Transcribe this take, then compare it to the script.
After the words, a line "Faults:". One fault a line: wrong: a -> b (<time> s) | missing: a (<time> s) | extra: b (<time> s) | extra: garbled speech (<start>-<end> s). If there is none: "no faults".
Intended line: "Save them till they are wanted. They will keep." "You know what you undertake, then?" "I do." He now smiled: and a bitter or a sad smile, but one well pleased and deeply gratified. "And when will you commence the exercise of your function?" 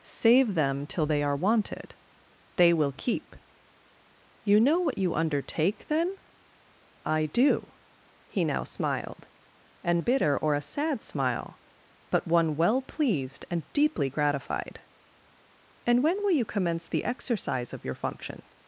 "Save them till they are wanted. They will keep." "You know what you undertake, then?" "I do." He now smiled: and a bitter or a sad smile, but one well pleased and deeply gratified. "And when will you commence the exercise of your function?"
Faults:
no faults